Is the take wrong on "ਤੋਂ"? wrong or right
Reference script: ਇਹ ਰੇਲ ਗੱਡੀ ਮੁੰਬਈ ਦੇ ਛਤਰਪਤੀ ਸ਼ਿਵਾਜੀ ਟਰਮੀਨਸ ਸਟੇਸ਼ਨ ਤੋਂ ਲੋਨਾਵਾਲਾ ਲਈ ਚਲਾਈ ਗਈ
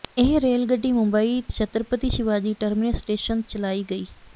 wrong